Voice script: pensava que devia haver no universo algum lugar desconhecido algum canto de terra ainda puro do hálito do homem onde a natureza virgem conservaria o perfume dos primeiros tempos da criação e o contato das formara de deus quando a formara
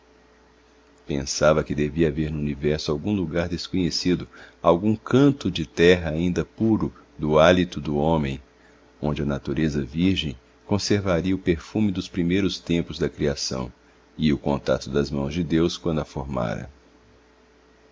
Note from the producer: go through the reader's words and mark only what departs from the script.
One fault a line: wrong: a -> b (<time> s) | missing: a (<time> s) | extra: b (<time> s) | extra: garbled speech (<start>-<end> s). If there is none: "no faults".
wrong: formara -> mãos (15.1 s)